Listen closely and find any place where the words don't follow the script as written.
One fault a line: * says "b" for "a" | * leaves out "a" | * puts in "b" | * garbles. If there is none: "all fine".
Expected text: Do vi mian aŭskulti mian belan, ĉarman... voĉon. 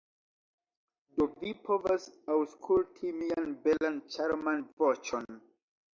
* says "povas" for "mian"